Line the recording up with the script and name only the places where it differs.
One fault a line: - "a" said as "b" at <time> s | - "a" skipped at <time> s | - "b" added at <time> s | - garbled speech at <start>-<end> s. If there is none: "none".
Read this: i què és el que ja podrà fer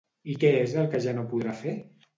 - "no" added at 1.2 s